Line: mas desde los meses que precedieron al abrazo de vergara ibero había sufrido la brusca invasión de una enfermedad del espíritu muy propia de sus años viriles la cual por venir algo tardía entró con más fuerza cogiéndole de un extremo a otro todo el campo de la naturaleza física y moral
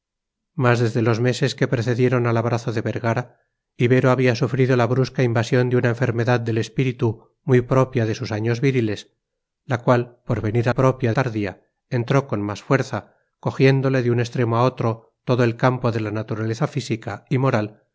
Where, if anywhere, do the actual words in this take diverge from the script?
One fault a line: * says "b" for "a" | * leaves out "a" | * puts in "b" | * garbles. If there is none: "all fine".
* says "propia" for "algo"